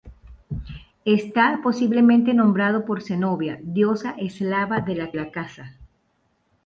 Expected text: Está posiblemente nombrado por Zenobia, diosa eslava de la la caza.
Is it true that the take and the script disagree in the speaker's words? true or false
false